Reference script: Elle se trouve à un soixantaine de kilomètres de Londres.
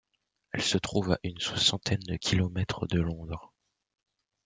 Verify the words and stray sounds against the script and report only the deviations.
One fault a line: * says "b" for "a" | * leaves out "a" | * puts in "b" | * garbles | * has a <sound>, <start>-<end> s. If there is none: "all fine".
* says "une" for "un"